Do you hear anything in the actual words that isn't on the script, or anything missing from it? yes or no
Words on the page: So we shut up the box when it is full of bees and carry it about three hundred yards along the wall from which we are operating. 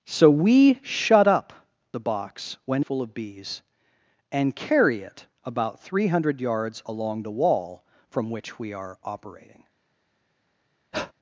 yes